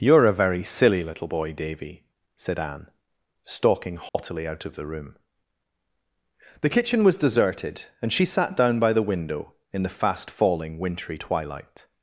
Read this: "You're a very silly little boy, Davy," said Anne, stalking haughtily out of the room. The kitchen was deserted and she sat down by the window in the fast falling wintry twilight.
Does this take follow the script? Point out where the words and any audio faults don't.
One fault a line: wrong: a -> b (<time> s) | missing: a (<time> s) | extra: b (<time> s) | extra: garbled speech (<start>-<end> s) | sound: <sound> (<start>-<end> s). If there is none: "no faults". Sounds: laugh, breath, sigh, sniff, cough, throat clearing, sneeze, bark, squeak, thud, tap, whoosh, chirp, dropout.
sound: dropout (4.1-4.1 s)